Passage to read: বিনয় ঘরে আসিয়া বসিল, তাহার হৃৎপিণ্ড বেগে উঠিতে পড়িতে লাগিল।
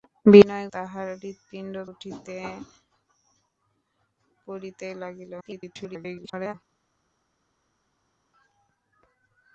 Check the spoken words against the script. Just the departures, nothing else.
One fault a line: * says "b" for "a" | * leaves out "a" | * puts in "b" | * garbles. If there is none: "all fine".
* leaves out "ঘরে আসিয়া বসিল"
* leaves out "বেগে"
* garbles